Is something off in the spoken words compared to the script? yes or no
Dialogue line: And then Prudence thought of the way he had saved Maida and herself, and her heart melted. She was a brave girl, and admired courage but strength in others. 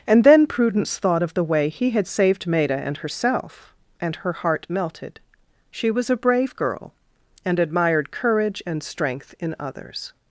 yes